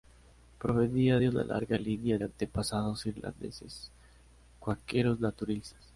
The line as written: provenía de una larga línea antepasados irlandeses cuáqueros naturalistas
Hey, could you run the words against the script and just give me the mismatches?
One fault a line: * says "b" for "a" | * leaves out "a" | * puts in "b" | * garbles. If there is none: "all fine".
all fine